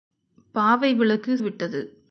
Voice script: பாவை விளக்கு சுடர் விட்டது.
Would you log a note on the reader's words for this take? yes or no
yes